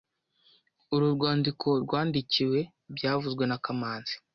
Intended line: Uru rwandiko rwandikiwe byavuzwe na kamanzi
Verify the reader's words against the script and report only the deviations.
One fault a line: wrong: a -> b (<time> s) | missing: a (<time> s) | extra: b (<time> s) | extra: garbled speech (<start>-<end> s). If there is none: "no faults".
no faults